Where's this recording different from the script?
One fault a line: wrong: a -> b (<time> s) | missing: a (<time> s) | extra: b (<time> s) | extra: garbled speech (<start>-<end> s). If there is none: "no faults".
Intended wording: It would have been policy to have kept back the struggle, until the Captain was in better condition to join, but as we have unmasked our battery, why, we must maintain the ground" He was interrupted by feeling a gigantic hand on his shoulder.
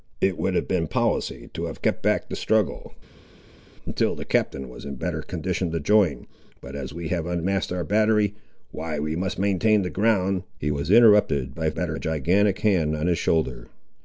wrong: feeling -> better (11.7 s)